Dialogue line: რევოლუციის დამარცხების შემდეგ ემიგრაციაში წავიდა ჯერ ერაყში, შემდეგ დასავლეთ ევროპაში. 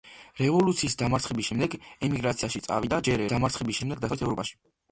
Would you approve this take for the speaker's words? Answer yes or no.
no